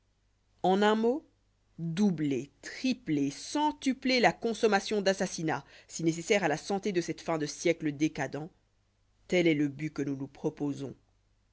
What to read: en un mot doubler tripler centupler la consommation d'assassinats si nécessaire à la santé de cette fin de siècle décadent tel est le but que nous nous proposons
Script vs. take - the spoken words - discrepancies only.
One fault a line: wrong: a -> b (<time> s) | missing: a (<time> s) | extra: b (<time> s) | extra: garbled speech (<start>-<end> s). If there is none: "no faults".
no faults